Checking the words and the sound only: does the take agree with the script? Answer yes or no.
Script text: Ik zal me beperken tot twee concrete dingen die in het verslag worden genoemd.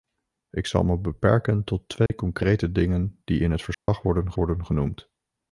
no